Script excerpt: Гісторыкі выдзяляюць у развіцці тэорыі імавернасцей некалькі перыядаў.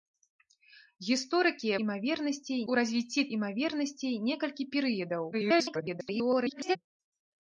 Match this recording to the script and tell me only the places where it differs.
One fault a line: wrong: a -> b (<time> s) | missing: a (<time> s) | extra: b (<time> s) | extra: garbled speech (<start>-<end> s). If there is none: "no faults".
wrong: выдзяляюць -> імавернасцей (1.8 s)
missing: тэорыі (3.2 s)
extra: garbled speech (5.3-6.8 s)